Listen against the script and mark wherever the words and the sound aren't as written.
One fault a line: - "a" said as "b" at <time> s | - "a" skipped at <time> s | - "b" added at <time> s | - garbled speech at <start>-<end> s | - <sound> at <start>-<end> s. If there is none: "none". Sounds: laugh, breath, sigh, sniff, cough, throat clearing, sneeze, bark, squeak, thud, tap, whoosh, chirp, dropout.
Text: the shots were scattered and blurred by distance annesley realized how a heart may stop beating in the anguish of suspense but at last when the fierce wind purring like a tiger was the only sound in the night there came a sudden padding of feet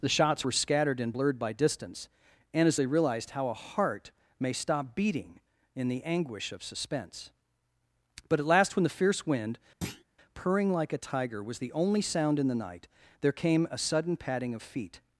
- "annesley" said as "and as they" at 2.5 s
- thud at 9.8-10.0 s